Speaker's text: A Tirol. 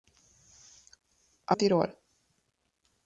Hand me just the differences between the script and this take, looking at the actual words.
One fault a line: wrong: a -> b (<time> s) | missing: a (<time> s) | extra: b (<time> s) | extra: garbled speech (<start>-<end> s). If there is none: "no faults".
no faults